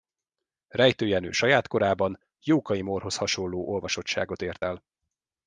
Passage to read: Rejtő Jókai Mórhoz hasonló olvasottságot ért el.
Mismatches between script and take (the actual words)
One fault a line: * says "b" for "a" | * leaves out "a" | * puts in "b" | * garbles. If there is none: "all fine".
* puts in "Jenő saját korában"